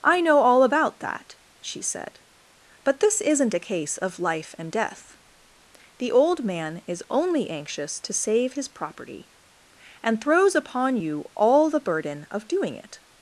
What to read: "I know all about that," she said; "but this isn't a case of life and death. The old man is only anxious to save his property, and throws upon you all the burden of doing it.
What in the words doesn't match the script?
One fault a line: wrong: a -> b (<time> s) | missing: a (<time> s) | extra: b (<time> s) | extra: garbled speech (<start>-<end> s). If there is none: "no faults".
no faults